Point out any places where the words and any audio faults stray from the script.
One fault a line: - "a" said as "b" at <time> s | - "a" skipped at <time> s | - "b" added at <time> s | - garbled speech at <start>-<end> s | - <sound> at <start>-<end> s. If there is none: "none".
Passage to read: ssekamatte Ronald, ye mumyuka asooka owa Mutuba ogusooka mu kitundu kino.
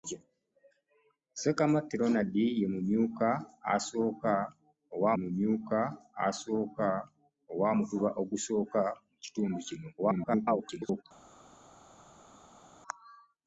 - "mumyuka asooka owa" added at 5.2 s
- garbled speech at 10.0-11.0 s